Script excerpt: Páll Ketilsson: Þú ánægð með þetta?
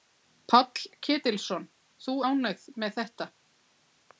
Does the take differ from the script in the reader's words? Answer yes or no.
no